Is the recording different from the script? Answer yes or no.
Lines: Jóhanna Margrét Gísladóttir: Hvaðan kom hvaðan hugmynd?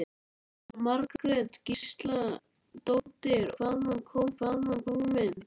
no